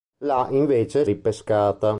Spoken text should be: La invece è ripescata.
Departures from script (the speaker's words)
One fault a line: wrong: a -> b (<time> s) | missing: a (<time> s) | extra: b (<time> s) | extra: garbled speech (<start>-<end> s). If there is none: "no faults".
no faults